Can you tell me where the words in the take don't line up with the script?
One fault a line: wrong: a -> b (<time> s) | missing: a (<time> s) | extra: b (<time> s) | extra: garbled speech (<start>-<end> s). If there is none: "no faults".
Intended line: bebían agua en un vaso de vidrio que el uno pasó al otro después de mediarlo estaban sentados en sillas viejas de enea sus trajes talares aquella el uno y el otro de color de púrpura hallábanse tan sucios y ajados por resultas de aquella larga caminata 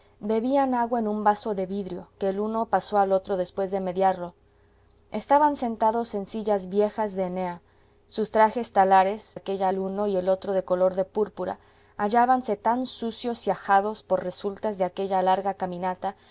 no faults